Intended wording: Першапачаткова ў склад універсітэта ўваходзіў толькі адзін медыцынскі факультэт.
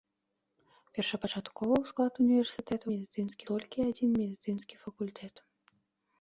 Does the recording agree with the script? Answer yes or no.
no